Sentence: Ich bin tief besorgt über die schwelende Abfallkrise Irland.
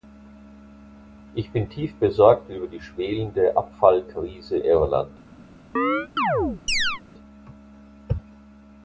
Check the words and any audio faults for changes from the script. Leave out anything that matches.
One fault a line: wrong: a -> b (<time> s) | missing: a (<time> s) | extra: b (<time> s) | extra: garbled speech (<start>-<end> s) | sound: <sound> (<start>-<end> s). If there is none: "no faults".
sound: chirp (5.8-7.0 s)